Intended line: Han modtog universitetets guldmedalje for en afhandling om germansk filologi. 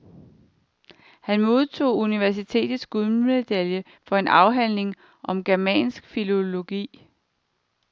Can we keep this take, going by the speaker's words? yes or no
yes